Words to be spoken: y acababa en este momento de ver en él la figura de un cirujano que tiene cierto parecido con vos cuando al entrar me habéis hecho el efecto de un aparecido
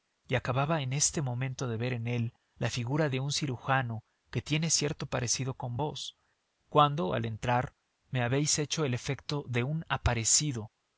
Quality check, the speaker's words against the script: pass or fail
pass